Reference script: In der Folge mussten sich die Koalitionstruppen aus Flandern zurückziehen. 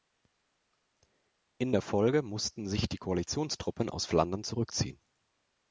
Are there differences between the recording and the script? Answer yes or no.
no